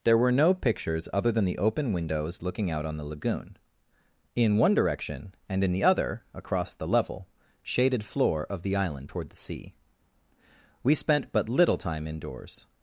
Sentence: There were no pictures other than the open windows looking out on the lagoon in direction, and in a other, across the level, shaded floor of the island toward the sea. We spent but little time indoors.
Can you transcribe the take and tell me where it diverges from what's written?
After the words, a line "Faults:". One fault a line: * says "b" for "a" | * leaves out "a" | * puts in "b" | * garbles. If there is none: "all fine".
There were no pictures other than the open windows looking out on the lagoon in one direction, and in the other, across the level, shaded floor of the island toward the sea. We spent but little time indoors.
Faults:
* puts in "one"
* says "the" for "a"